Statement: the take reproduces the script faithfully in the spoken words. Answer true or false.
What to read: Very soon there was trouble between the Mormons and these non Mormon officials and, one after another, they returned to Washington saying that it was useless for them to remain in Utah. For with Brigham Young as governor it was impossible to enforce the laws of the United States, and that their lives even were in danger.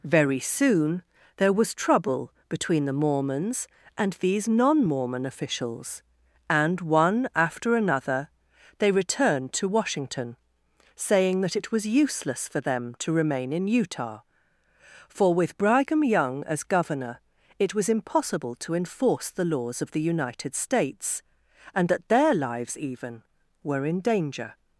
true